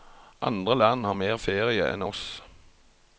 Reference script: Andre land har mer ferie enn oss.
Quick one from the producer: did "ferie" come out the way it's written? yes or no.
yes